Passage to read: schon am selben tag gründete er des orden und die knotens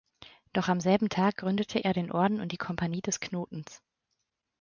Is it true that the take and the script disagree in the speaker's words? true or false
true